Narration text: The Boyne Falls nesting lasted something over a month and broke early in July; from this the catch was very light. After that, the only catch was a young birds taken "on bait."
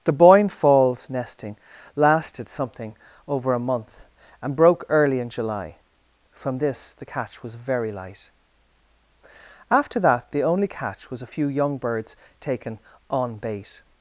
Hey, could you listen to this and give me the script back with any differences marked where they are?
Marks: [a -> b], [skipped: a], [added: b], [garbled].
The Boyne Falls nesting lasted something over a month and broke early in July; from this the catch was very light. After that, the only catch was a [added: few] young birds taken "on bait."